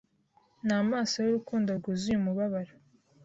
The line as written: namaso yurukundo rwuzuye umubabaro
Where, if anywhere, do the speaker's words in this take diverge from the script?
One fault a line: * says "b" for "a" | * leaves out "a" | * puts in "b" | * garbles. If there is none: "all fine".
all fine